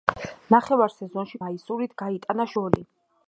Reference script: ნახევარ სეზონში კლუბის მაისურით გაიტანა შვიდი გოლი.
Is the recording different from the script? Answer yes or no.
yes